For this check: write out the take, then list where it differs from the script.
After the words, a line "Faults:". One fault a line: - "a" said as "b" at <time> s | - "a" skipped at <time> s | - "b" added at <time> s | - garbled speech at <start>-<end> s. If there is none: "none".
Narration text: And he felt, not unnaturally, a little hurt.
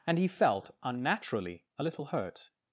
And he felt, unnaturally, a little hurt.
Faults:
- "not" skipped at 0.7 s